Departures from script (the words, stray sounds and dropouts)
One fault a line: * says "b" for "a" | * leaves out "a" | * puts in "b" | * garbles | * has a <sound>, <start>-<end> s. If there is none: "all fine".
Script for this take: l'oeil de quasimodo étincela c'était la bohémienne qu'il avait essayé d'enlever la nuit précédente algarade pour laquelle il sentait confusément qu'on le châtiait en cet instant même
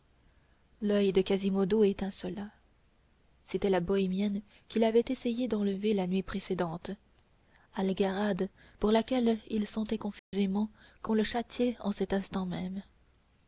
* has a dropout, 10.2-10.3 s